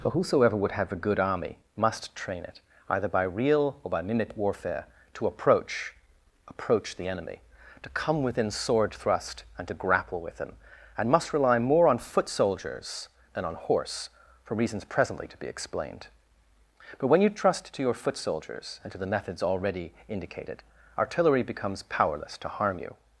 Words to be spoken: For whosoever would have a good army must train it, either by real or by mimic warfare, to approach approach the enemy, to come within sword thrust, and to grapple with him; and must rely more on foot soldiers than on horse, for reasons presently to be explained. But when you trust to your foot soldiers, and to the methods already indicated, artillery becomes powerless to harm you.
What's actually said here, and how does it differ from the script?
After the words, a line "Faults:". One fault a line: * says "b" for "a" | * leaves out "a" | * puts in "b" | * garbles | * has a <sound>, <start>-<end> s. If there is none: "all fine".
For whosoever would have a good army must train it, either by real or by mimic warfare, to approach approach the enemy, to come within sword thrust, and to grapple with him; and must rely more on foot soldiers than on horse, for reasons presently to be explained. But when you trust to your foot soldiers, and to the methods already indicated, artillery becomes powerless to harm you.
Faults:
all fine